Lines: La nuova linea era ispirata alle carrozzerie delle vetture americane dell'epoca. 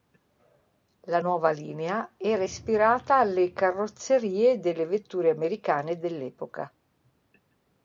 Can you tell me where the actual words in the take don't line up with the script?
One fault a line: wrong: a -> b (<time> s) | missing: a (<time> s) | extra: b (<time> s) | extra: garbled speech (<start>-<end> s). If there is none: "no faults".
no faults